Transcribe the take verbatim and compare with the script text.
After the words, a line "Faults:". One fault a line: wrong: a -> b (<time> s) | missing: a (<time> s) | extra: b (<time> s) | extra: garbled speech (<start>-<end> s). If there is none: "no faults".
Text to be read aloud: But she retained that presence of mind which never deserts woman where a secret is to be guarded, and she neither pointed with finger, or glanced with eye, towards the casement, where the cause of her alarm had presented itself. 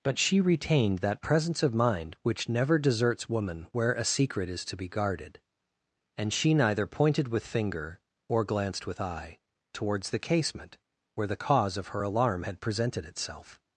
But she retained that presence of mind which never deserts woman where a secret is to be guarded, and she neither pointed with finger, or glanced with eye, towards the casement, where the cause of her alarm had presented itself.
Faults:
no faults